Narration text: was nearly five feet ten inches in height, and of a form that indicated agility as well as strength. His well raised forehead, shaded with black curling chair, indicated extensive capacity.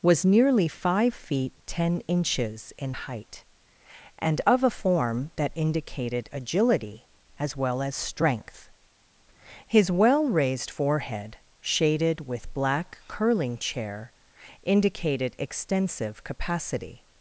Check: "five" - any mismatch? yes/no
no